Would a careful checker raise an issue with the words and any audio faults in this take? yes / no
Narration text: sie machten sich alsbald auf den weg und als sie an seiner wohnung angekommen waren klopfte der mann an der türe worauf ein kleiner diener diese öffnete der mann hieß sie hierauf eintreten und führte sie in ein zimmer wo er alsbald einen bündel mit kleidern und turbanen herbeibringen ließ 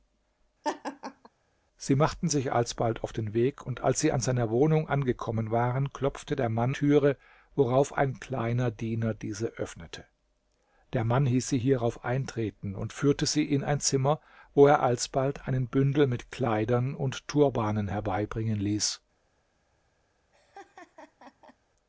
yes